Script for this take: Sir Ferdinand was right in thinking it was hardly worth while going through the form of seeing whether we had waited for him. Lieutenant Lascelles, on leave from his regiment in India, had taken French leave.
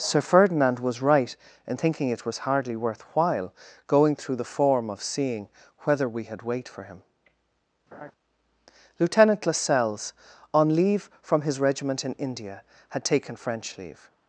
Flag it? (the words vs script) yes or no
yes